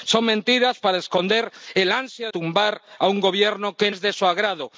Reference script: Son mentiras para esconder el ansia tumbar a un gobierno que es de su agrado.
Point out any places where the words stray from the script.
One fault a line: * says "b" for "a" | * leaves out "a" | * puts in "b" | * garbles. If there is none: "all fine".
all fine